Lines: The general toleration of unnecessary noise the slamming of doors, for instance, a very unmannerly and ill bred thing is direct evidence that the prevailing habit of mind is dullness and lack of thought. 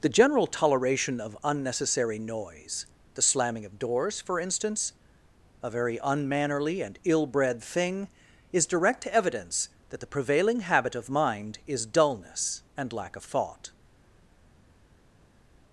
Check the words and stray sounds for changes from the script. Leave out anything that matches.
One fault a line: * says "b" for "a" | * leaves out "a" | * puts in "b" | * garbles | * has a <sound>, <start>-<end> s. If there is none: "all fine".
all fine